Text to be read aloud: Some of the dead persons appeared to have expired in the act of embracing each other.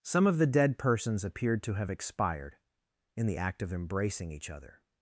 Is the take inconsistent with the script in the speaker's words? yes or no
no